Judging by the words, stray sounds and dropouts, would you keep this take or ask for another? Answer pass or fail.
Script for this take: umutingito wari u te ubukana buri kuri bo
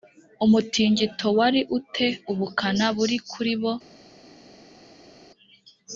pass